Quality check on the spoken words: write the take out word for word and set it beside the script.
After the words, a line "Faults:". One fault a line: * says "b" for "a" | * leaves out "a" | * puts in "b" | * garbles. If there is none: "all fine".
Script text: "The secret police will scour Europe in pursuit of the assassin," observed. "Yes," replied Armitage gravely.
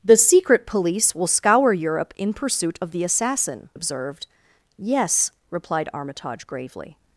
"The secret police will scour Europe in pursuit of the assassin," observed. "Yes," replied Armitage gravely.
Faults:
all fine